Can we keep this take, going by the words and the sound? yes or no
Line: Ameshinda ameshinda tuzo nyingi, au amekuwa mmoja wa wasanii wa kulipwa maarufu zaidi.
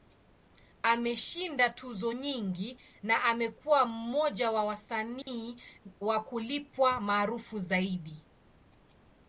no